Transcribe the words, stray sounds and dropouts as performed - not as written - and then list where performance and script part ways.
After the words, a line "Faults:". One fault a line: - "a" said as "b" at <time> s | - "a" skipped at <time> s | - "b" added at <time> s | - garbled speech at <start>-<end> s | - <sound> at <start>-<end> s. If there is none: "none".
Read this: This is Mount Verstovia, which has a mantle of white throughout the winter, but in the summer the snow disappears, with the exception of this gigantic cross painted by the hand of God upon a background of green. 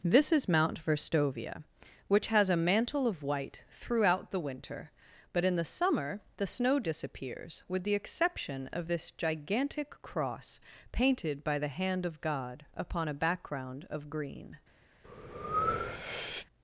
This is Mount Verstovia, which has a mantle of white throughout the winter, but in the summer the snow disappears, with the exception of this gigantic cross painted by the hand of God upon a background of green.
Faults:
- breath at 15.0-16.5 s